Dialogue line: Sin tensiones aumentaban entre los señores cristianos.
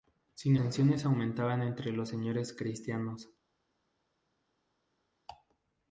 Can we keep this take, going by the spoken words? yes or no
yes